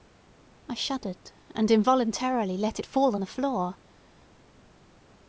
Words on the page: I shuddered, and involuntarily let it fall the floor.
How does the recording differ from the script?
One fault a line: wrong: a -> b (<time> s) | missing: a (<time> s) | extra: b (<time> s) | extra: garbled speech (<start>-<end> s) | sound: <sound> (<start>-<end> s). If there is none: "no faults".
no faults